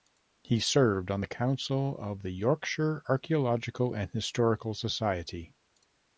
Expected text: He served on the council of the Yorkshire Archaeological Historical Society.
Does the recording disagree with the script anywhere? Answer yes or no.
yes